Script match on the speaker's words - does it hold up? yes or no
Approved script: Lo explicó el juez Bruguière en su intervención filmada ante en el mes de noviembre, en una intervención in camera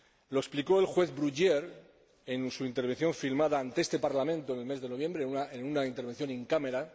no